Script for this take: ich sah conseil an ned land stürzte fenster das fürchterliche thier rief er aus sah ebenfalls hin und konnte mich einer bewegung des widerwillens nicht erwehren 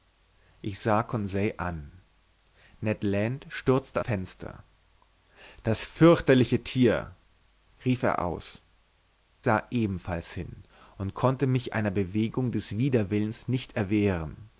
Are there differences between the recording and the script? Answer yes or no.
no